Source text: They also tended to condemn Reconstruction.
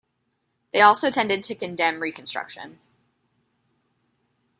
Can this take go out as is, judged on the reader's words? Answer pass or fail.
pass